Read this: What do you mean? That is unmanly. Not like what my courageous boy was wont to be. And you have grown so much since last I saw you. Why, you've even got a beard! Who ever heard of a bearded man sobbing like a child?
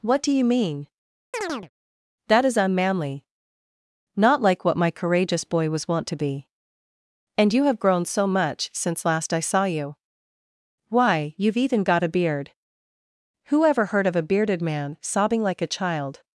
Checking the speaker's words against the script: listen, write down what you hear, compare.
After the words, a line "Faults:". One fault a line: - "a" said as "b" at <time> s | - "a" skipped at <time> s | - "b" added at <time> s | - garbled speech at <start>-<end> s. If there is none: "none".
What do you mean? That is unmanly. Not like what my courageous boy was wont to be. And you have grown so much since last I saw you. Why, you've even got a beard! Who ever heard of a bearded man sobbing like a child?
Faults:
none